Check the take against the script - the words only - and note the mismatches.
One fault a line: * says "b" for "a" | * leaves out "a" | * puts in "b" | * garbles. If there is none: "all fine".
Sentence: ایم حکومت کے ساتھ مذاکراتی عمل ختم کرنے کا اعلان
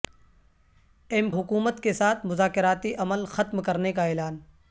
all fine